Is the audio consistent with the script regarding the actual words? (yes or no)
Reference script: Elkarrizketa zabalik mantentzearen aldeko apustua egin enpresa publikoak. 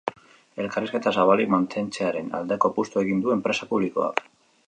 no